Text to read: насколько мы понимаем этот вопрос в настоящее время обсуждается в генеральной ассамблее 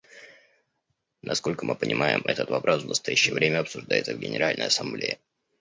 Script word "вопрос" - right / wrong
right